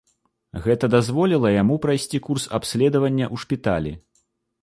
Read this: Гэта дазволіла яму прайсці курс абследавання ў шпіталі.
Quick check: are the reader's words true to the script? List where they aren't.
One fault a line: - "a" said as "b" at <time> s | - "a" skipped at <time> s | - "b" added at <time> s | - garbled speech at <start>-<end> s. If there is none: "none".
none